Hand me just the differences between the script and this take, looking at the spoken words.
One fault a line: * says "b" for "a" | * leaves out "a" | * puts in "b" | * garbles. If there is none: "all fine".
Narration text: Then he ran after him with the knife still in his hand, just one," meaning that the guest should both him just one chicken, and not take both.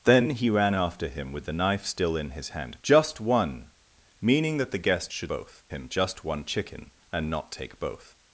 all fine